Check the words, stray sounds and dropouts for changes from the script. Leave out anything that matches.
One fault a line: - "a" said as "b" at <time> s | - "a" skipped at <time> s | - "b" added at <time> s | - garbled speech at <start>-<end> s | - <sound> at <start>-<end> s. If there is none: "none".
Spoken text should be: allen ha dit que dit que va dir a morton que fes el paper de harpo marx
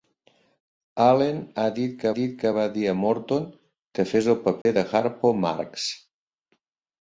- dropout at 4.6-4.7 s